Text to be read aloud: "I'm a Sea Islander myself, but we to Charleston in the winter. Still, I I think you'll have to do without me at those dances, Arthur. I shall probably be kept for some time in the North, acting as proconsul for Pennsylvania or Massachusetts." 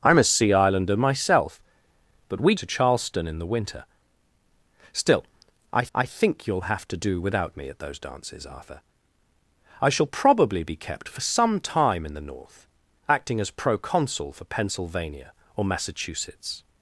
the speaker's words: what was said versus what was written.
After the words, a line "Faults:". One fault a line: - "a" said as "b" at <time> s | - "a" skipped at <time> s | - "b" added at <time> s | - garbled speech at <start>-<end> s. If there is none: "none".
"I'm a Sea Islander myself, but we to Charleston in the winter. Still, I I think you'll have to do without me at those dances, Arthur. I shall probably be kept for some time in the North, acting as proconsul for Pennsylvania or Massachusetts."
Faults:
none